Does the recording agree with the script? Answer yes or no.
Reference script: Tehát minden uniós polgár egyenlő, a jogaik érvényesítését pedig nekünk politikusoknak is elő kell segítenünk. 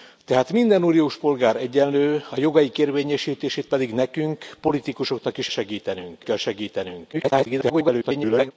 no